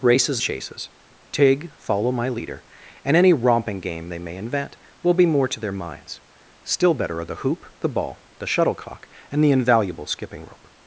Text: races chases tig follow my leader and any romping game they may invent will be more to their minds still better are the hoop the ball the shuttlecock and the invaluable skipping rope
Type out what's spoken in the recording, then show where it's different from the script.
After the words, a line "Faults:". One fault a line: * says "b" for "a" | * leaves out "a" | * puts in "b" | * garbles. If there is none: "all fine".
races chases tig follow my leader and any romping game they may invent will be more to their minds still better are the hoop the ball the shuttlecock and the invaluable skipping rope
Faults:
all fine